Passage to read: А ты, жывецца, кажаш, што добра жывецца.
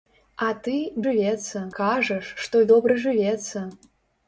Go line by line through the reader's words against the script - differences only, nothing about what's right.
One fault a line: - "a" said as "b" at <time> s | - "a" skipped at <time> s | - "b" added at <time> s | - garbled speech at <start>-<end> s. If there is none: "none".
none